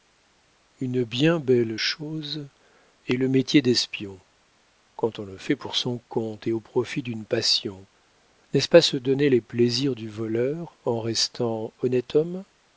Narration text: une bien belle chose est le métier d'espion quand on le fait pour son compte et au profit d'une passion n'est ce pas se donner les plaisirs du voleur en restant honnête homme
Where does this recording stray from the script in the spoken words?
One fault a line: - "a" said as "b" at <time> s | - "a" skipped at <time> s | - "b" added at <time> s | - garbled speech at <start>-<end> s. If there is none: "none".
none